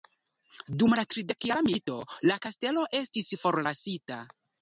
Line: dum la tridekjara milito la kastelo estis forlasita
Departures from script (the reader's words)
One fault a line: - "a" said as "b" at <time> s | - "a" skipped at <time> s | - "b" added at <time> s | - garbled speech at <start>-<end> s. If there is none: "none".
none